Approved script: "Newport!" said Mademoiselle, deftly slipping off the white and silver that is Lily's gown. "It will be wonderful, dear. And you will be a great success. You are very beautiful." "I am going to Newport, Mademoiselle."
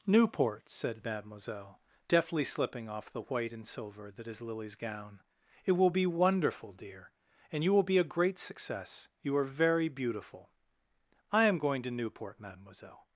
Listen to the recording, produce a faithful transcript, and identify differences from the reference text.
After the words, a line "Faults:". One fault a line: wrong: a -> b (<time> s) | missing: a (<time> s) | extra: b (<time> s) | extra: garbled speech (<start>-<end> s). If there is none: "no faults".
"Newport!" said Mademoiselle, deftly slipping off the white and silver that is Lily's gown. "It will be wonderful, dear. And you will be a great success. You are very beautiful." "I am going to Newport, Mademoiselle."
Faults:
no faults